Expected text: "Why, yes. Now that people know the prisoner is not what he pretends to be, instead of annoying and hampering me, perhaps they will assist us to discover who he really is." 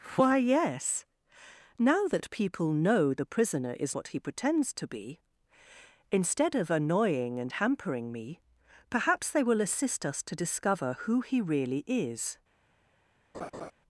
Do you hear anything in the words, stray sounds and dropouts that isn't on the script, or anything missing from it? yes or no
yes